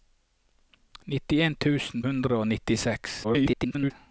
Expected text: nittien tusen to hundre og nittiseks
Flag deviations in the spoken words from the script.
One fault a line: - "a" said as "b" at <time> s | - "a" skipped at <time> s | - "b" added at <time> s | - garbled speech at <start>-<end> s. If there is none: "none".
- "to" skipped at 2.0 s
- garbled speech at 3.2-3.9 s